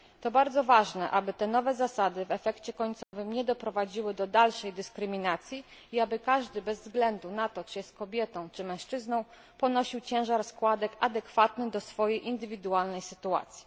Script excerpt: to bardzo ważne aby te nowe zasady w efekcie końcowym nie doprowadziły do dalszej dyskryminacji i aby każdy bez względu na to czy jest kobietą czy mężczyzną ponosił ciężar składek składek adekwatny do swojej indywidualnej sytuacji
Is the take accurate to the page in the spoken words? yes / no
no